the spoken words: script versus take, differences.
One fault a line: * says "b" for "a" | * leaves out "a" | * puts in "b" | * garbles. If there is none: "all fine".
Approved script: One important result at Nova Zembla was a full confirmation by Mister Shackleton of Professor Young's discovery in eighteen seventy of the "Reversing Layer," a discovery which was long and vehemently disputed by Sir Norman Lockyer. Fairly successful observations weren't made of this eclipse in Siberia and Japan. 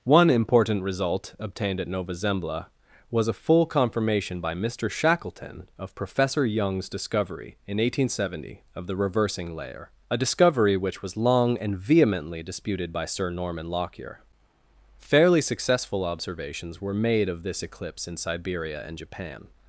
* puts in "obtained"
* says "were" for "weren't"